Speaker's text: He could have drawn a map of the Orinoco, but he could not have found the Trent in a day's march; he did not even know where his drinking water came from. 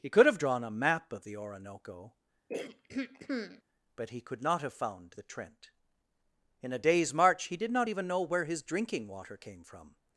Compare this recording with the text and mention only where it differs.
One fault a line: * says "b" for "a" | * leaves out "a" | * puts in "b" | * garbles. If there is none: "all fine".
all fine